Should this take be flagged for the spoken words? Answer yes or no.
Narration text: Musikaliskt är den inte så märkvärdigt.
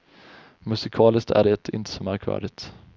yes